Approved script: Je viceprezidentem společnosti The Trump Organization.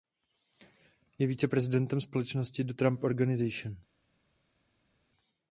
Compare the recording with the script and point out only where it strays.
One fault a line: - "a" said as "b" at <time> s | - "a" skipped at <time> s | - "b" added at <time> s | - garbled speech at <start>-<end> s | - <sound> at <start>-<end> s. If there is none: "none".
none